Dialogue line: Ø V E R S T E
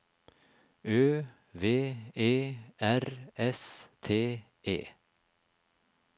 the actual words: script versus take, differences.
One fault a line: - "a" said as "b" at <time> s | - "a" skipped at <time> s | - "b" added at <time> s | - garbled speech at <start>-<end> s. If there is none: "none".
none